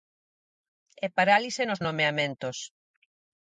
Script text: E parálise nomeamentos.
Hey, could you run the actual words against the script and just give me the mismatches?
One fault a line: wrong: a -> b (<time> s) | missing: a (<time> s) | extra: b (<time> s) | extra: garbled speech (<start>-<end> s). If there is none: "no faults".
extra: nos (1.6 s)